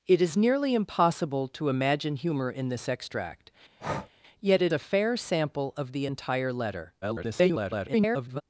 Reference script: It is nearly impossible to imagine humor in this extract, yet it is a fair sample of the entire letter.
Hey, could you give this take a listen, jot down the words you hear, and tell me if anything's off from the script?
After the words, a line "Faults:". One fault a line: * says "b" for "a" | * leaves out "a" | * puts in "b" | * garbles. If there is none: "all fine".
It is nearly impossible to imagine humor in this extract, yet it a fair sample of the entire letter. [garbled]
Faults:
* leaves out "is"
* garbles